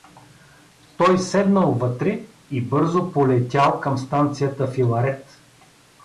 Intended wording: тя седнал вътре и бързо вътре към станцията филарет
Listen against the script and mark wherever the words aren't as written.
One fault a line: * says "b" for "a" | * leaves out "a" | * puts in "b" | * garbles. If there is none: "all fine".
* says "той" for "тя"
* says "полетял" for "вътре"